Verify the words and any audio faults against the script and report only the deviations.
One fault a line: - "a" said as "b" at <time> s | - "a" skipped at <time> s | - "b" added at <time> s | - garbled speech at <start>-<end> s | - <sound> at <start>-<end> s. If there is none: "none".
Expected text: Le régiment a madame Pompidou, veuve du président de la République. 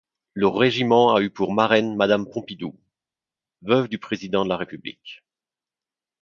- "eu pour marraine" added at 1.2 s